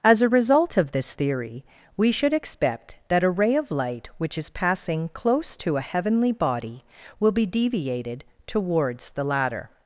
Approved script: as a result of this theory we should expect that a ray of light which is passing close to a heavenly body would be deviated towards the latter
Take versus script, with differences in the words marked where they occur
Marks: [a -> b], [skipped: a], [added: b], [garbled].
as a result of this theory we should expect that a ray of light which is passing close to a heavenly body [would -> will] be deviated towards the latter